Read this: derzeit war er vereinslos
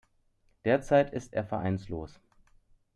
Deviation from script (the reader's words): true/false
true